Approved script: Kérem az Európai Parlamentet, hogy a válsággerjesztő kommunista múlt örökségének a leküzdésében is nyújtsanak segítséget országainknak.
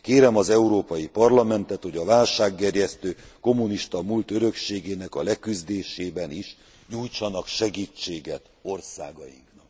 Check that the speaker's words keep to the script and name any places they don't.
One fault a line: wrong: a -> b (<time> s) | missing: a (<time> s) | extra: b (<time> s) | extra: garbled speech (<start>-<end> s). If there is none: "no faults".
no faults